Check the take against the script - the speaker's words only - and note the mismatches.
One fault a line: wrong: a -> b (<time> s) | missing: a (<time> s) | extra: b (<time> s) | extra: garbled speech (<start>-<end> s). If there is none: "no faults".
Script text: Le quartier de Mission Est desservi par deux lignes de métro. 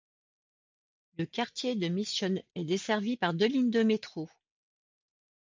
no faults